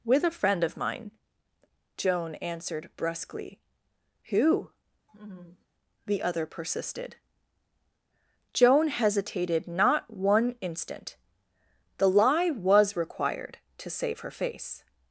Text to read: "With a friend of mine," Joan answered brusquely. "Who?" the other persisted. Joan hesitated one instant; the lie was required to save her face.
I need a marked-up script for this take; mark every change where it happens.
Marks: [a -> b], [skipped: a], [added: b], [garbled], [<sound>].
"With a friend of mine," Joan answered brusquely. "Who?" [laugh] the other persisted. Joan hesitated [added: not] one instant; the lie was required to save her face.